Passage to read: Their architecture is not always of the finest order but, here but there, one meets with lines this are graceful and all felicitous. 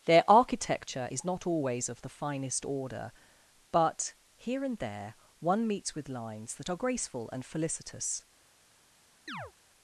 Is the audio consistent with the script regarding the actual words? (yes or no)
no